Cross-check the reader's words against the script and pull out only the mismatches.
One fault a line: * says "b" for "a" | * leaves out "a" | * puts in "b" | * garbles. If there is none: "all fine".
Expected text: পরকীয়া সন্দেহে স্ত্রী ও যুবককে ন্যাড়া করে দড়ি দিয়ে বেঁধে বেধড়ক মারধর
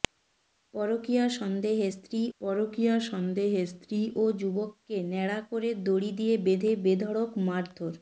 * puts in "পরকীয়া সন্দেহে স্ত্রী"